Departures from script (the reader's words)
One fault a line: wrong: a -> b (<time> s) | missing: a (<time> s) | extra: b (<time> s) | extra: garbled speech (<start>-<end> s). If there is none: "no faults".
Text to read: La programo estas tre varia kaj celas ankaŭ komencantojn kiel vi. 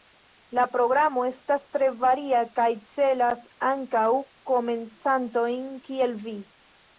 no faults